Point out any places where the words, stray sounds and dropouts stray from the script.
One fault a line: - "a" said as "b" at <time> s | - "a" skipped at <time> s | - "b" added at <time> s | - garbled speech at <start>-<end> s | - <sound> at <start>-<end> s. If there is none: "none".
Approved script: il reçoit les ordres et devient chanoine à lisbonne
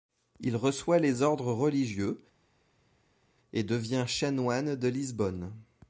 - "religieux" added at 1.5 s
- "à" said as "de" at 4.7 s